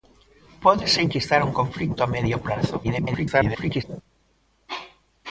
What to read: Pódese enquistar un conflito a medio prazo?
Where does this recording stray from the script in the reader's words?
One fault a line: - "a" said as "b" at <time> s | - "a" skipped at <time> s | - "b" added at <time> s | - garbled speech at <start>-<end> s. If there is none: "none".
- garbled speech at 2.8-3.8 s